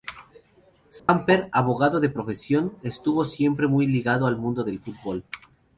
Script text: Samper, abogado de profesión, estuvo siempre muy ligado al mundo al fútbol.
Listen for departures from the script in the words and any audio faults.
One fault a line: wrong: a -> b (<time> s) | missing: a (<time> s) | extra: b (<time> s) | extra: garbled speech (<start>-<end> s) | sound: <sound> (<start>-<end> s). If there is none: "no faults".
sound: dropout (1.0-1.1 s)
wrong: al -> del (4.6 s)